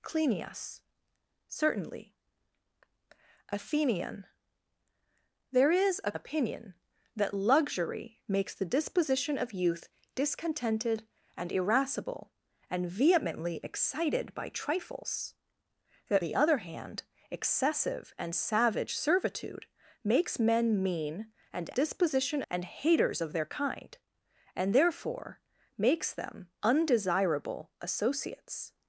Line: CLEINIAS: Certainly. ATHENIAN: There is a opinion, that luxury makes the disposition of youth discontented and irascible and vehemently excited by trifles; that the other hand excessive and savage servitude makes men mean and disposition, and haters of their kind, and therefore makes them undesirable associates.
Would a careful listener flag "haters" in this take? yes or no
no